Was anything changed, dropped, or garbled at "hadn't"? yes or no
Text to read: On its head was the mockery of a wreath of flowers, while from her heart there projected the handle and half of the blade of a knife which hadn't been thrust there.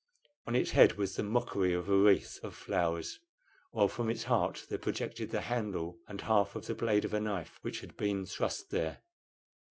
yes